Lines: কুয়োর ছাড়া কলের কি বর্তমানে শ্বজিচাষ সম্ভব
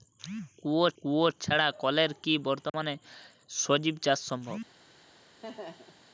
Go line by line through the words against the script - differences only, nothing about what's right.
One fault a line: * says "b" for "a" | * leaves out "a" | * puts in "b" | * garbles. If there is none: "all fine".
* puts in "কুয়োর"